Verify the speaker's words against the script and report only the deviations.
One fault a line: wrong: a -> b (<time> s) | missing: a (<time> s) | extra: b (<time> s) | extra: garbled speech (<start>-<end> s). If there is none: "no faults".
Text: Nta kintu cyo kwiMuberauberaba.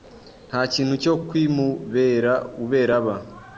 no faults